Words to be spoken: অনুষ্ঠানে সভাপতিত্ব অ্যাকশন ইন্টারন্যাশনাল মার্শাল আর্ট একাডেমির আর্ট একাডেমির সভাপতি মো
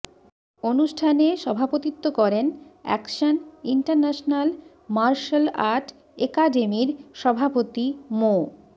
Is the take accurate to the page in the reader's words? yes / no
no